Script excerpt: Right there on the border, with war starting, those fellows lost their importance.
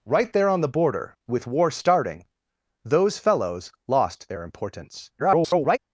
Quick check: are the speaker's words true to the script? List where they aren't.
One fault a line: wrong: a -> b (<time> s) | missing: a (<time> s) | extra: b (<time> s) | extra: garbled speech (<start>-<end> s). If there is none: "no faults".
extra: garbled speech (5.2-5.8 s)